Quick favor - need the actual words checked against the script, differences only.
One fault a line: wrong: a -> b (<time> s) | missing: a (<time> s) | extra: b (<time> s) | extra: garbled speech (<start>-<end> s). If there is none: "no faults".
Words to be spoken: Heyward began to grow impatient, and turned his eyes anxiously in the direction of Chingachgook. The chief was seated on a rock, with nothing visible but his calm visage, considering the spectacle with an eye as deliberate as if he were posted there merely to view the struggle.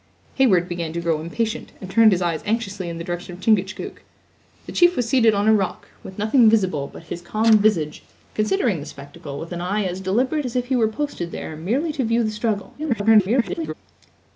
extra: garbled speech (12.8-13.7 s)